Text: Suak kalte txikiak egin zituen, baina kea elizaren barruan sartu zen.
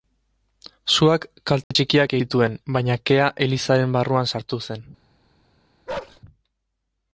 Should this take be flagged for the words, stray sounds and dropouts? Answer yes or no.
yes